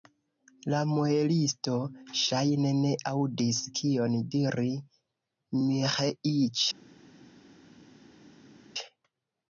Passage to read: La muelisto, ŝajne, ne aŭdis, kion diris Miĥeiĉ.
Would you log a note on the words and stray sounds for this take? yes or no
no